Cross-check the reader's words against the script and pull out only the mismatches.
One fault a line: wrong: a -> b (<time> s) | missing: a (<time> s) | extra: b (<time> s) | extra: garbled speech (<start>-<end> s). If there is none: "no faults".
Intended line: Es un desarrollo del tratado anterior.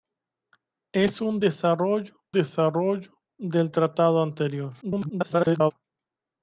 extra: desarrollo (2.3 s)
extra: garbled speech (4.8-5.7 s)